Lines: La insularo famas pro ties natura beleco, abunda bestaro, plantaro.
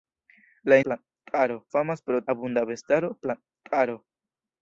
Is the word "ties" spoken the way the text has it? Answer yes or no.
no